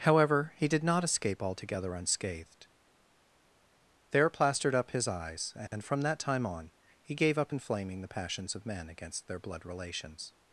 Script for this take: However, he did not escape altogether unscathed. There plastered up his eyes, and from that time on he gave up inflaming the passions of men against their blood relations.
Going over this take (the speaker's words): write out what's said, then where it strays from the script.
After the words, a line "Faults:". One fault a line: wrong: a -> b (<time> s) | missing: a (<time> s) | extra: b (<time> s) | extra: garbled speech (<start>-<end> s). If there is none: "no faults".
However, he did not escape altogether unscathed. There plastered up his eyes, and from that time on he gave up inflaming the passions of men against their blood relations.
Faults:
no faults